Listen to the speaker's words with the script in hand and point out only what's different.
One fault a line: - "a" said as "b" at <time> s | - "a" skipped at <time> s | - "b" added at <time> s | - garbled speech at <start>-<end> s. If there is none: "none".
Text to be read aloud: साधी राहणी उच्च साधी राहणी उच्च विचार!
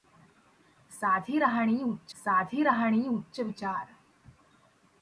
none